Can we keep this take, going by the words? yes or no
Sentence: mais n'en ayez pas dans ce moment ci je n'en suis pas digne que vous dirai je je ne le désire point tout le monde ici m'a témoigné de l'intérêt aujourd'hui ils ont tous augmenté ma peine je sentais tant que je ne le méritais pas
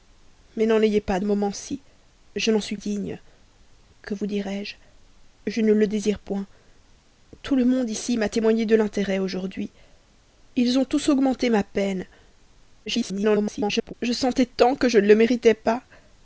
no